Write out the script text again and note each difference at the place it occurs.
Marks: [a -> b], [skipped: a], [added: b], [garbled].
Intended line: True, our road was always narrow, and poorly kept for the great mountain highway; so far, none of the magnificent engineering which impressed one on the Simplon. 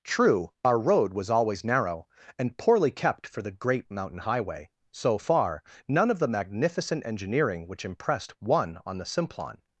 True, our road was always narrow, and poorly kept for the great mountain highway; so far, none of the magnificent engineering which impressed one on the Simplon.